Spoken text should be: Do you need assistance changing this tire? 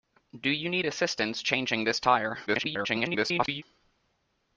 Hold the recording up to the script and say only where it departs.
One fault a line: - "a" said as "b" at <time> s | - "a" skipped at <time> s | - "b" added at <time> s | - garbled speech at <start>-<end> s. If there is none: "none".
- garbled speech at 2.5-3.6 s